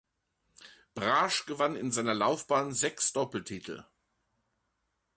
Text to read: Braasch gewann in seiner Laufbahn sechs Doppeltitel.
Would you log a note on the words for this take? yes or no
no